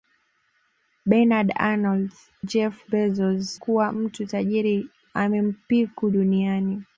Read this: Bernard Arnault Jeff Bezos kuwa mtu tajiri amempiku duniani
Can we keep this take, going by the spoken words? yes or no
yes